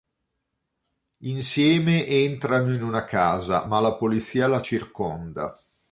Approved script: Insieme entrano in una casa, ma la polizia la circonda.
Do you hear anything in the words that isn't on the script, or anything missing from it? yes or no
no